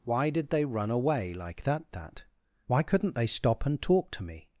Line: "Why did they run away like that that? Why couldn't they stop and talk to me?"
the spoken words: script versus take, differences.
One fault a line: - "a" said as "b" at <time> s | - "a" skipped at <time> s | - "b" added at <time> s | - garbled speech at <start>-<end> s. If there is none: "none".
none